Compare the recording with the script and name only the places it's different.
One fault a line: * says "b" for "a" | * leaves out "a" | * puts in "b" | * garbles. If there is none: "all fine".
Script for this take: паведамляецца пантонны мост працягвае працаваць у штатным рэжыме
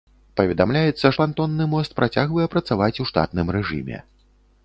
all fine